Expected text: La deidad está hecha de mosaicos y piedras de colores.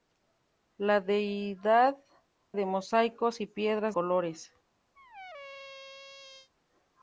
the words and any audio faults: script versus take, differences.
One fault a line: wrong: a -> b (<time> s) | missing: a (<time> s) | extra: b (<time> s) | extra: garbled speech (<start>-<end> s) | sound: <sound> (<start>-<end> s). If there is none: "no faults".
missing: está hecha (1.9 s)
missing: de (3.9 s)
sound: squeak (5.0-6.5 s)